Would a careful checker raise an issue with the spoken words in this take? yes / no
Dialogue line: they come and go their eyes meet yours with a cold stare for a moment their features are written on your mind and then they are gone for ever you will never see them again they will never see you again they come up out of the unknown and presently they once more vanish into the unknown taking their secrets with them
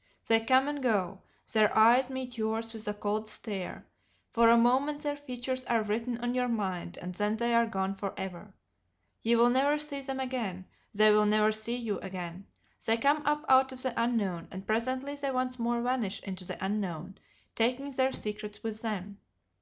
no